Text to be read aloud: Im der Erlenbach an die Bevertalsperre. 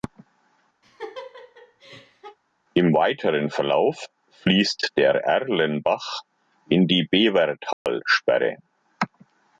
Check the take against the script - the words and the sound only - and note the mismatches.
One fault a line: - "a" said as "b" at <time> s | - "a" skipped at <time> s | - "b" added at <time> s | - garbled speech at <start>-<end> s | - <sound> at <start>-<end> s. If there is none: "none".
- laugh at 0.8-2.4 s
- "weiteren Verlauf fließt" added at 2.9 s
- "an" said as "in" at 6.7 s
- dropout at 7.7-7.9 s